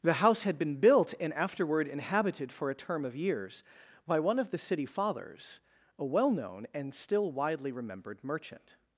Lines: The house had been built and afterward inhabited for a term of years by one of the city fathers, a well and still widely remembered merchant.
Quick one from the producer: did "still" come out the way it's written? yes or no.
yes